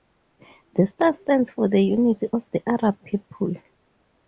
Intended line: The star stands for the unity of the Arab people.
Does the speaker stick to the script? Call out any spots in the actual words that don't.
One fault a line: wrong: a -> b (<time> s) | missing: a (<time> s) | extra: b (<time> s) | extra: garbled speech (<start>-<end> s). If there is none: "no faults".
no faults